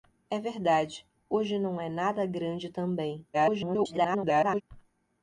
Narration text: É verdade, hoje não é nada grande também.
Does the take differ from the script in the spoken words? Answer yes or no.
yes